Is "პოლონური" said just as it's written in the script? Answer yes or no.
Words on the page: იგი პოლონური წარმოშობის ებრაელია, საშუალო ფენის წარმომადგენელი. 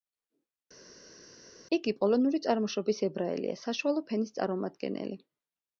yes